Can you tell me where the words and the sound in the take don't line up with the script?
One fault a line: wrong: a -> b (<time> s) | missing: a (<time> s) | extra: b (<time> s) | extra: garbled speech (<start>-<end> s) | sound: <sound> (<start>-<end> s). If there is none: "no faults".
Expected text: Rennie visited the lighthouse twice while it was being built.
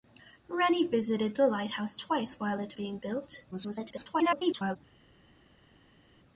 missing: was (2.8 s)
extra: garbled speech (3.5-4.8 s)